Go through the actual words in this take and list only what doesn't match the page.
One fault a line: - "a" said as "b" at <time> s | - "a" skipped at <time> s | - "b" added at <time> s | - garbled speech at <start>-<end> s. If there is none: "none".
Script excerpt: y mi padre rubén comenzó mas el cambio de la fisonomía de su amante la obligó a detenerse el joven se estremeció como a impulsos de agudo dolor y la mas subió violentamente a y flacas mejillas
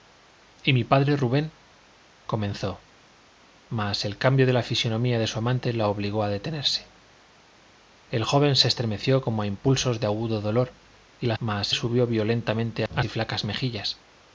none